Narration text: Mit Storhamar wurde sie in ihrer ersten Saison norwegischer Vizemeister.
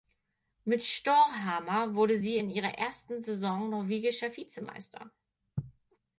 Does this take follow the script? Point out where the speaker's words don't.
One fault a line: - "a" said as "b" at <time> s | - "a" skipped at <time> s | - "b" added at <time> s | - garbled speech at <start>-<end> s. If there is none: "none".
none